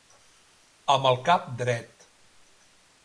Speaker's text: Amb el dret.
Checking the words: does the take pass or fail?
fail